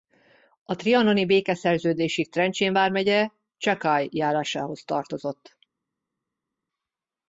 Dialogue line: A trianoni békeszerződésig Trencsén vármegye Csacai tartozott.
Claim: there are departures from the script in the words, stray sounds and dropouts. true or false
true